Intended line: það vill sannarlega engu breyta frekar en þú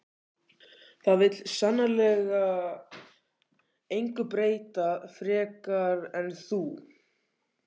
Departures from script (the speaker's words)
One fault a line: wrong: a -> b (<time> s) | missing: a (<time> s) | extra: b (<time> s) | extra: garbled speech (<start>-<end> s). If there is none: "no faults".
no faults